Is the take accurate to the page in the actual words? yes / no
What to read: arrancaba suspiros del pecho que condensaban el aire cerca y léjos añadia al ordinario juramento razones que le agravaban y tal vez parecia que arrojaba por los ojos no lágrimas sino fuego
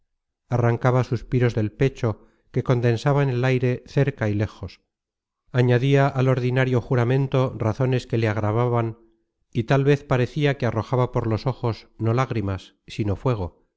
yes